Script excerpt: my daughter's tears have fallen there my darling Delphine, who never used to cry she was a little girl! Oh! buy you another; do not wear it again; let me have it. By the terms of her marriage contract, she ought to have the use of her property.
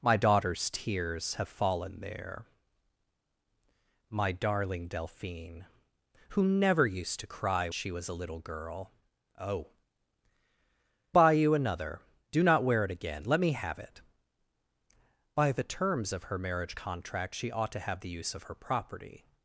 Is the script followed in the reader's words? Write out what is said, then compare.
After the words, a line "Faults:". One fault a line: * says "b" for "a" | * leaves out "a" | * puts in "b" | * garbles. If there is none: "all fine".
my daughter's tears have fallen there my darling Delphine, who never used to cry she was a little girl! Oh! buy you another; do not wear it again; let me have it. By the terms of her marriage contract, she ought to have the use of her property.
Faults:
all fine